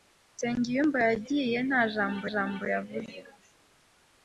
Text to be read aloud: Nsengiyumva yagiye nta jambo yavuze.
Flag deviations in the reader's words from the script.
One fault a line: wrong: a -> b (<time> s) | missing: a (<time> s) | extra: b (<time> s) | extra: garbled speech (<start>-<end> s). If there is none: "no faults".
extra: jambo (2.3 s)